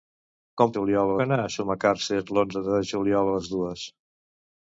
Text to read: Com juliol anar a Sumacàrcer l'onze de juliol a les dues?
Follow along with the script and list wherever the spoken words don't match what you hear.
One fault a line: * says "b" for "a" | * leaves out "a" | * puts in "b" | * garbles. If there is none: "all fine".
all fine